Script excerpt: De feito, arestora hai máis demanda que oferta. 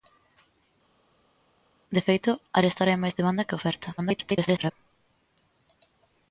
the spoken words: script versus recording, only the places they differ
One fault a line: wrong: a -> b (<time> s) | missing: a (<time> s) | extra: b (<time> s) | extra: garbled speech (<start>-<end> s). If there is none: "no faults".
extra: garbled speech (4.0-4.7 s)